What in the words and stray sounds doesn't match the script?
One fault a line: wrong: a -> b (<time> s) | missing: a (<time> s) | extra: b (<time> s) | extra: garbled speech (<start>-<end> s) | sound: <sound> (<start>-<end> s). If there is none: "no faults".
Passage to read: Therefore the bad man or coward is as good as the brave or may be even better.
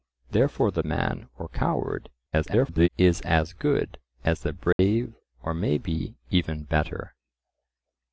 missing: bad (0.8 s)
extra: garbled speech (2.3-2.9 s)
sound: dropout (4.7-4.8 s)